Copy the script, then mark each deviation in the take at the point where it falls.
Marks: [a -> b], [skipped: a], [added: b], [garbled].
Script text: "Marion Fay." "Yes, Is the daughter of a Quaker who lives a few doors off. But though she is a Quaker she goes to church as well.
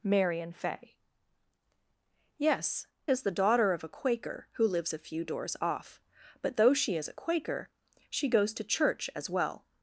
"Marion Fay." "Yes, Is the daughter of a Quaker who lives a few doors off. But though she is a Quaker she goes to church as well.